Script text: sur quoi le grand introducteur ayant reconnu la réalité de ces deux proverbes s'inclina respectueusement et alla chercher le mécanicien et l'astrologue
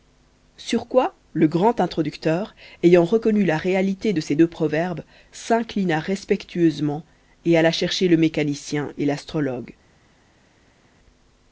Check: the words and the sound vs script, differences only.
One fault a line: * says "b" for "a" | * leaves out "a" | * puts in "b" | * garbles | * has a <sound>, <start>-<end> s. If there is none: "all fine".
all fine